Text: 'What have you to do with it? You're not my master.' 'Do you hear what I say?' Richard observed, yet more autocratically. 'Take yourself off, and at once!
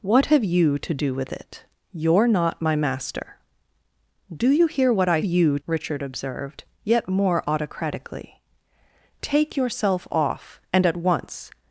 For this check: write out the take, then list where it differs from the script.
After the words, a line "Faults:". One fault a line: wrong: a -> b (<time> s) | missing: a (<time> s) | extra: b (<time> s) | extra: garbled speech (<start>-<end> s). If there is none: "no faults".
'What have you to do with it? You're not my master.' 'Do you hear what I you?' Richard observed, yet more autocratically. 'Take yourself off, and at once!
Faults:
wrong: say -> you (5.2 s)